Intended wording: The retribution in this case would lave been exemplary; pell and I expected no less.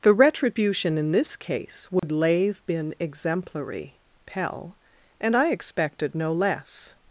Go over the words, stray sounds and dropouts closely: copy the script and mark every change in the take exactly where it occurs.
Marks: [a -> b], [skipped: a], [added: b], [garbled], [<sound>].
The retribution in this case would [dropout] lave been exemplary; pell and I expected no less.